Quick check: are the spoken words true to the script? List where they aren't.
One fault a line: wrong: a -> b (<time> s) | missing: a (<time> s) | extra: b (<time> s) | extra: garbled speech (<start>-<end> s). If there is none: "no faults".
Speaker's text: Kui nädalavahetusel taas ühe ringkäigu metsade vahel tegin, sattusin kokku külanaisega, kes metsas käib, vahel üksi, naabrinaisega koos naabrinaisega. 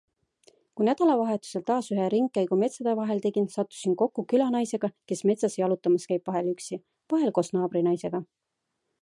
extra: jalutamas (5.6 s)
wrong: naabrinaisega -> vahel (7.2 s)